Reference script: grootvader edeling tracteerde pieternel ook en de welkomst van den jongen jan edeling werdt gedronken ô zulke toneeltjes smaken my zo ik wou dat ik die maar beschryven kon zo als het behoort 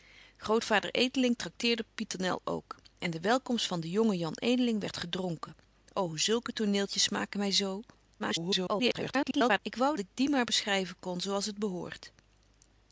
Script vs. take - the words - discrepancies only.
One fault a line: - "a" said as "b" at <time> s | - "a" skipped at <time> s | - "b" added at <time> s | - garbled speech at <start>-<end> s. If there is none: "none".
- garbled speech at 8.2-9.6 s
- "dat" skipped at 10.0 s